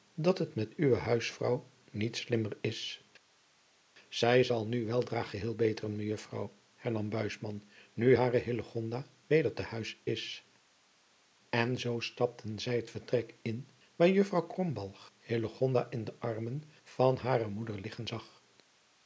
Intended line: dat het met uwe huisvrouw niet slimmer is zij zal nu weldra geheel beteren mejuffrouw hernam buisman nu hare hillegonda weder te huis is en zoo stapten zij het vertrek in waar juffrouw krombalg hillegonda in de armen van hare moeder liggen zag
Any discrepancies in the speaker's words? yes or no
no